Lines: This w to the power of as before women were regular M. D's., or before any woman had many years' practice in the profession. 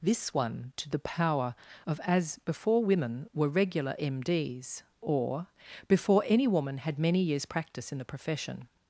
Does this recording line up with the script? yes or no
no